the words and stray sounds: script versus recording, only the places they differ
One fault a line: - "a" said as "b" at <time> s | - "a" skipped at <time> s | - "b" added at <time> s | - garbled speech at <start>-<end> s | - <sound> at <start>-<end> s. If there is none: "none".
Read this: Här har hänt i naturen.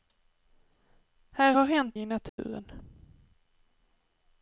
- dropout at 2.3-2.4 s